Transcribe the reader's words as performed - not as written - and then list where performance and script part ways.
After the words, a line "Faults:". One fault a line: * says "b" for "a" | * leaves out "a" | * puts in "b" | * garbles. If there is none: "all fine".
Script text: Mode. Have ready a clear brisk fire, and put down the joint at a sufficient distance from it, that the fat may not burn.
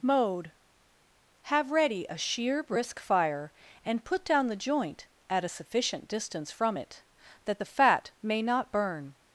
Mode. Have ready a sheer brisk fire, and put down the joint at a sufficient distance from it, that the fat may not burn.
Faults:
* says "sheer" for "clear"